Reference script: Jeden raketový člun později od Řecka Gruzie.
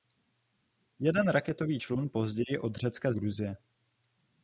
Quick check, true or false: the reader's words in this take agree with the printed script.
true